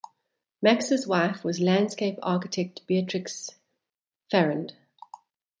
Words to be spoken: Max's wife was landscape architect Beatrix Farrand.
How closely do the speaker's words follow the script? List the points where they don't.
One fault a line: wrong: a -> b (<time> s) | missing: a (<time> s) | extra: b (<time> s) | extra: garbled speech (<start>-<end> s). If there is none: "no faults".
no faults